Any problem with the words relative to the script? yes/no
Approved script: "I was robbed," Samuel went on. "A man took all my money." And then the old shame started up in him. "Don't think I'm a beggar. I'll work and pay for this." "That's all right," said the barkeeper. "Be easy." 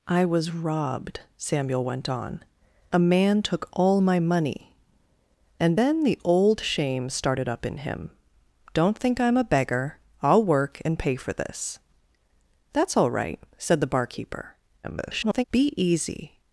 yes